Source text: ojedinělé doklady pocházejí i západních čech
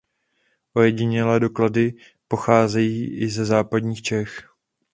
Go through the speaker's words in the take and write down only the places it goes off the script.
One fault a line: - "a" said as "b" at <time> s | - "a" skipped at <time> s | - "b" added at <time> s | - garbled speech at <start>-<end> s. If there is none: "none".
- "ze" added at 3.3 s